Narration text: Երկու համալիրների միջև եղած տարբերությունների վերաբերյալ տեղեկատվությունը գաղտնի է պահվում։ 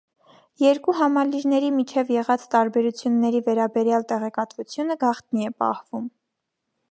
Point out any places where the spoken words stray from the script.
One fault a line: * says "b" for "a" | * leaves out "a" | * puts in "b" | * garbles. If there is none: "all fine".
all fine